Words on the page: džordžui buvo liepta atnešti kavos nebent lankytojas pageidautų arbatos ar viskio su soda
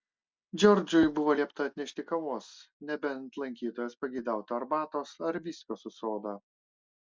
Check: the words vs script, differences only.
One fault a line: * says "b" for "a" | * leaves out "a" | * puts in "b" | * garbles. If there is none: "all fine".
all fine